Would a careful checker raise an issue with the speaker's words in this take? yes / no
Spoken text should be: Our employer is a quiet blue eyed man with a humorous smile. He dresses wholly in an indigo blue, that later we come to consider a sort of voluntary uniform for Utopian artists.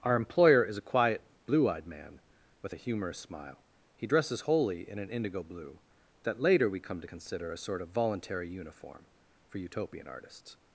no